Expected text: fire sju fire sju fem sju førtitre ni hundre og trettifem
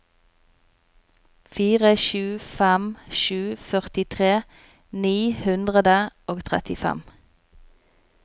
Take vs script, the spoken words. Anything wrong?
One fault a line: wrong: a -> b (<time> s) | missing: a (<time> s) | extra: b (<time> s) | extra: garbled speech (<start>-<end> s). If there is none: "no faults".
missing: fire sju (2.2 s)